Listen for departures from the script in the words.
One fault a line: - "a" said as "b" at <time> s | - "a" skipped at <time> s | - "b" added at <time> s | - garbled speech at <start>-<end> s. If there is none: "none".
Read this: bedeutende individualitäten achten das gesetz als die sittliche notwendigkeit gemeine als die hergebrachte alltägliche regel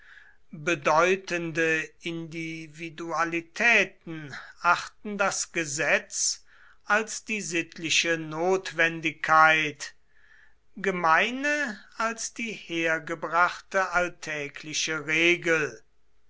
none